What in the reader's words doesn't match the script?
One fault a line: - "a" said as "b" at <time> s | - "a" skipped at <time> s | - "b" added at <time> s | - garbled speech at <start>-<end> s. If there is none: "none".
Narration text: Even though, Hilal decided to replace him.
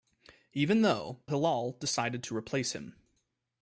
none